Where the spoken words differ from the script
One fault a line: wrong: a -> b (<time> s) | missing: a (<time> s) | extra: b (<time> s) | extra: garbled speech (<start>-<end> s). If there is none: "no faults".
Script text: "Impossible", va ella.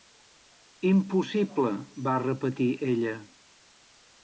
extra: repetir (2.2 s)